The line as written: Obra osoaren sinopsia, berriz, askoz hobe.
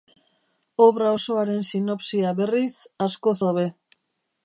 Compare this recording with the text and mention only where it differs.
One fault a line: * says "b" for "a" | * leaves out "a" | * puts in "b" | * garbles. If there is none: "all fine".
all fine